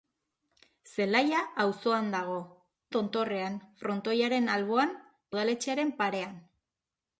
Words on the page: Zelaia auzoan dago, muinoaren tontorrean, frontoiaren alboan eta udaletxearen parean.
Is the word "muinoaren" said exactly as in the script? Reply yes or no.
no